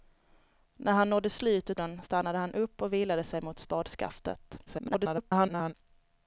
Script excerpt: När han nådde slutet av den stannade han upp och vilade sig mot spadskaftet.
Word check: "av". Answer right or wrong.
wrong